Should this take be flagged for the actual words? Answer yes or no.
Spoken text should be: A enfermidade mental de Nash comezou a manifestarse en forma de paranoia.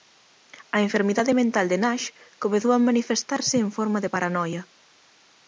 no